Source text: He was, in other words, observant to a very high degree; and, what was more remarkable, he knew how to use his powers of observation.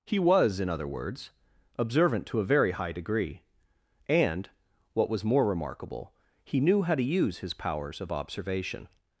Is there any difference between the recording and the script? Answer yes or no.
no